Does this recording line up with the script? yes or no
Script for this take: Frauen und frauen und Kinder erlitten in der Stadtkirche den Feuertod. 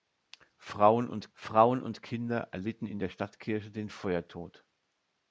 yes